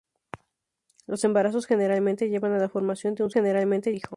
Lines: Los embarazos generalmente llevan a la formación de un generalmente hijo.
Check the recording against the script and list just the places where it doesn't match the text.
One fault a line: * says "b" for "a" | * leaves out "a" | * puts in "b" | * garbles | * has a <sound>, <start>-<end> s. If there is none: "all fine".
all fine